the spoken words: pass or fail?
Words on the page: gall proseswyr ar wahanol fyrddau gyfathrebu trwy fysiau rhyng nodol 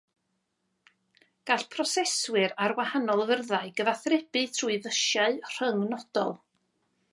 pass